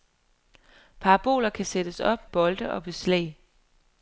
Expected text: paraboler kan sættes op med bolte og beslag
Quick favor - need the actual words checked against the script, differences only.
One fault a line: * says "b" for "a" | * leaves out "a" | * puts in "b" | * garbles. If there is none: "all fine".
* leaves out "med"